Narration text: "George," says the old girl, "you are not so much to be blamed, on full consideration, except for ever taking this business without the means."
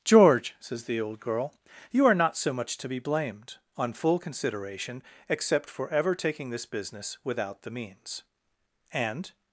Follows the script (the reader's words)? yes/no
no